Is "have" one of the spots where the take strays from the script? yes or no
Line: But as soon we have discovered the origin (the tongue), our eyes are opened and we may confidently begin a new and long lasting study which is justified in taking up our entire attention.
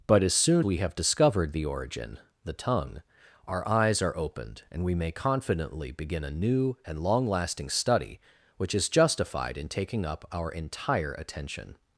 no